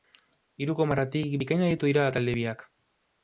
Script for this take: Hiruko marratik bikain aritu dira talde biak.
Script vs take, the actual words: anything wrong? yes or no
no